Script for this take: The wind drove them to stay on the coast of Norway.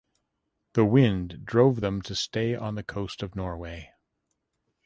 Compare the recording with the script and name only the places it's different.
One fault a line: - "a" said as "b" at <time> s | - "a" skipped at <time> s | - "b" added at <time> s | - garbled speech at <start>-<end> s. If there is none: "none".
none